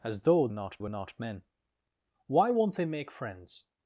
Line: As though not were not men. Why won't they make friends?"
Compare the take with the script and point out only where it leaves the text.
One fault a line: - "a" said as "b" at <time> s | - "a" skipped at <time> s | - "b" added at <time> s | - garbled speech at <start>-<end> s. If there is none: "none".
none